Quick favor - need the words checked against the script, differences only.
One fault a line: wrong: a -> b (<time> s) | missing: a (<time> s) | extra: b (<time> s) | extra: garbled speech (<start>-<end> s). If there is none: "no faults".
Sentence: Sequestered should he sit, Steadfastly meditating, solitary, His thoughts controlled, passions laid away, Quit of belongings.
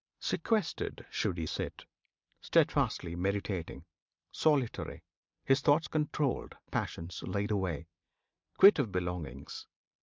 no faults